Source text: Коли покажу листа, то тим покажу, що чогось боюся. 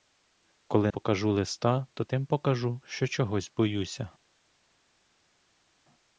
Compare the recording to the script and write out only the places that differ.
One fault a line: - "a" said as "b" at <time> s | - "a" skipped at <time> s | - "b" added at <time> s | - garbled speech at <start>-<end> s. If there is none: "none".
none